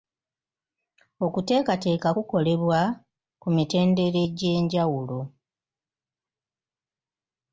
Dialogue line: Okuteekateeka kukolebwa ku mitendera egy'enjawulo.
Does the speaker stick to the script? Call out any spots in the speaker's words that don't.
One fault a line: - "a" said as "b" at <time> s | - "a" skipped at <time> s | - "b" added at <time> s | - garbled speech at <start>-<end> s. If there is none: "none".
none